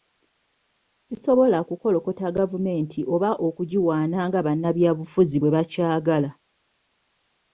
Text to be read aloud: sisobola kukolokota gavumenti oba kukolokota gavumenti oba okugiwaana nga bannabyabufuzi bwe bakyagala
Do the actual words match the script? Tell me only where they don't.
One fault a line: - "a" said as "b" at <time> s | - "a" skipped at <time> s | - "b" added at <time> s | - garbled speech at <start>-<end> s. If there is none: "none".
- "kukolokota gavumenti oba" skipped at 3.3 s